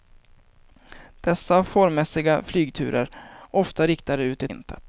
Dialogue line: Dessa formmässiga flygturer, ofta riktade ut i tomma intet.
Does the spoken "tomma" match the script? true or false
false